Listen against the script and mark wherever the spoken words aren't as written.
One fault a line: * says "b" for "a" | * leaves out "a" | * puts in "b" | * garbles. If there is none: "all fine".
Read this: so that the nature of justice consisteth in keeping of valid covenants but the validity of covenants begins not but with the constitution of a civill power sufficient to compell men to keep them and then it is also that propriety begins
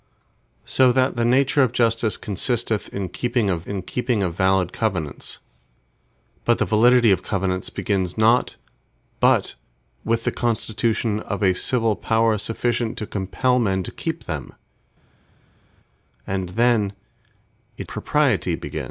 * puts in "in keeping of"
* leaves out "is also that"